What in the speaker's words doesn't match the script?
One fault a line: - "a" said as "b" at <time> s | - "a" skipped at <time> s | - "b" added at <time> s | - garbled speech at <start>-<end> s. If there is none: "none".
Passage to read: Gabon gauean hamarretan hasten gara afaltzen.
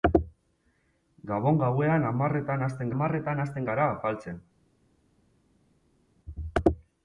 - "hamarretan hasten" added at 2.9 s